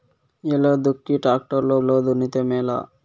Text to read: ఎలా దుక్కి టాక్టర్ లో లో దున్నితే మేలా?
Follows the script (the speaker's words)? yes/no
yes